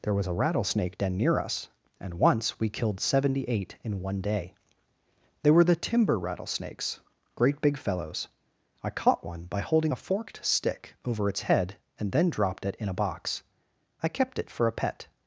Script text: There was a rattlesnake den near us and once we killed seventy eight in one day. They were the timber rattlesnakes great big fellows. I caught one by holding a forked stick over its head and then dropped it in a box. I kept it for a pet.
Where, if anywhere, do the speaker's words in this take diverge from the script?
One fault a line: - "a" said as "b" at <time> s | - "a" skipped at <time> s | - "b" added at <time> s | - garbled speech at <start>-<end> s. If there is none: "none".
none